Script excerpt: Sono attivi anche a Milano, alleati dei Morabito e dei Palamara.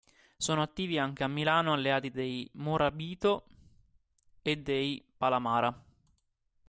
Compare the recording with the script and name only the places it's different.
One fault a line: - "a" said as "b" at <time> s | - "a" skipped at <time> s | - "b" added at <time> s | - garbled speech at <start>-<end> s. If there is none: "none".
none